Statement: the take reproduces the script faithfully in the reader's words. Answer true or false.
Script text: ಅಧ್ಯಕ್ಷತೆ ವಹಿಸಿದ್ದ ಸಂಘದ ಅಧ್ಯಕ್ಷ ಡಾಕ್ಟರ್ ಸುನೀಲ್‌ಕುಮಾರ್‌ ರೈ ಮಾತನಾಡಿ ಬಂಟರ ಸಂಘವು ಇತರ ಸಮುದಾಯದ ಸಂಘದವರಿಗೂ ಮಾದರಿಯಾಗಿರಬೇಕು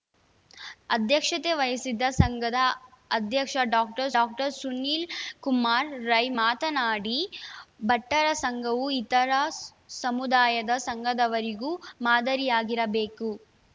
false